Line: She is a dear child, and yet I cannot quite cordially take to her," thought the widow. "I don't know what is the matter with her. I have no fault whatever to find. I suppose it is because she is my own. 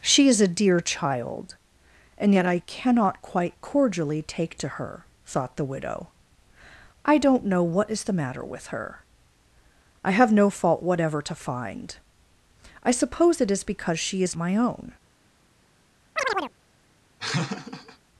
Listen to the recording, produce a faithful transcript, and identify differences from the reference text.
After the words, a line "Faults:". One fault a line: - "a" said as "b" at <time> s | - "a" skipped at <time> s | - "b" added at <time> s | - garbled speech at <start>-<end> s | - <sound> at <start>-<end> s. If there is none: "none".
She is a dear child, and yet I cannot quite cordially take to her," thought the widow. "I don't know what is the matter with her. I have no fault whatever to find. I suppose it is because she is my own.
Faults:
- chirp at 16.2-16.5 s
- laugh at 17.2-18.0 s